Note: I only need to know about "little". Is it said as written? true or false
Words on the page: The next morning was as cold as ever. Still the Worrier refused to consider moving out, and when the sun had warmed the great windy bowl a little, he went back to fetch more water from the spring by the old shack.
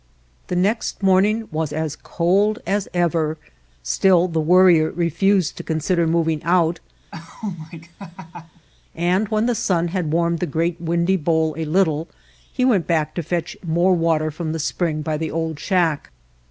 true